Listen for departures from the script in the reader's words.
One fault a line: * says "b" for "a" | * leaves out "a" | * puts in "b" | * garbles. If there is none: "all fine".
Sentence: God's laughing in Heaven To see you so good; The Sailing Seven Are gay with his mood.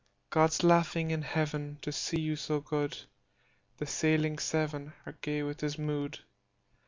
all fine